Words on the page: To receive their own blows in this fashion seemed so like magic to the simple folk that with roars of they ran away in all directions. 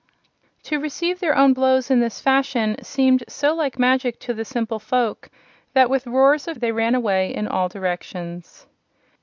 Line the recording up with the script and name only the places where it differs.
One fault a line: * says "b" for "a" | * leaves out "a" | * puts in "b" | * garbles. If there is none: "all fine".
all fine